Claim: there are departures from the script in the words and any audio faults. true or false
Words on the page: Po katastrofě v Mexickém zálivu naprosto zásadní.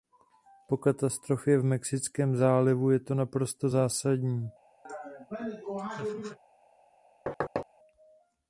true